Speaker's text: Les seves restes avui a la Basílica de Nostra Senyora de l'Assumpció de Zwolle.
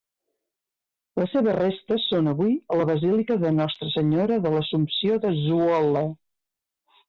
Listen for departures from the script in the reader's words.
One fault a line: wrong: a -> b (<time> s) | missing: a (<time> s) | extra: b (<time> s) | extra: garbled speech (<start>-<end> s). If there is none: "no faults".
extra: són (2.1 s)